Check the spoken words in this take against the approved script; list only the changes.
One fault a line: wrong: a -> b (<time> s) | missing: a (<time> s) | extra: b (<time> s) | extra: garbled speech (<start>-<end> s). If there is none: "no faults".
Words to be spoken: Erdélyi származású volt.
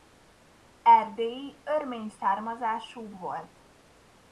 extra: örmény (1.6 s)